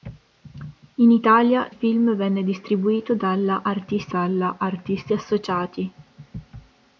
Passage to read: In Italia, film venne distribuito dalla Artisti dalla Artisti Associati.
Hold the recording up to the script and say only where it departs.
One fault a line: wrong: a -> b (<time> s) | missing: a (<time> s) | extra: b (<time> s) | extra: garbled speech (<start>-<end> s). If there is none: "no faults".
no faults